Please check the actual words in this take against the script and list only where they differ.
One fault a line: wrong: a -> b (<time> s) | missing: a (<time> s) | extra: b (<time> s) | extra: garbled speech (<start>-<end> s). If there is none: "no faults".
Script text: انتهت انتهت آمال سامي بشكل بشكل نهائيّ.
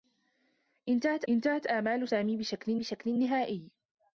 no faults